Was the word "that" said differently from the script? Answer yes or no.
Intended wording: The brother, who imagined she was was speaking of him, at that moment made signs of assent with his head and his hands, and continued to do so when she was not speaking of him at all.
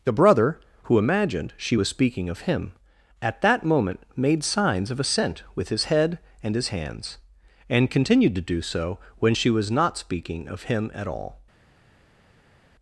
no